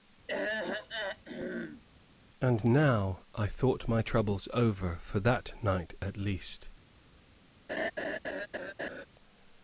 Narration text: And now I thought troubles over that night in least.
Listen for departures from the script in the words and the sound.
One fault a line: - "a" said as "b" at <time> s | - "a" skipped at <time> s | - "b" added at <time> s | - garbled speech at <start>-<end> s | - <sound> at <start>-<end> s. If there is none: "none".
- throat clearing at 0.3-1.8 s
- "my" added at 3.9 s
- "for" added at 5.0 s
- "in" said as "at" at 6.0 s
- laugh at 7.7-9.1 s